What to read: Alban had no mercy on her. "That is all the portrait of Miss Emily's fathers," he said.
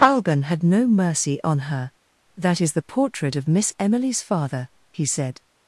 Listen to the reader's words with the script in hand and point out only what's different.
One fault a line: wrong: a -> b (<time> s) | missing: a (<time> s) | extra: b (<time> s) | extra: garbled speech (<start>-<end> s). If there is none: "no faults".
missing: all (2.7 s)
wrong: fathers -> father (4.2 s)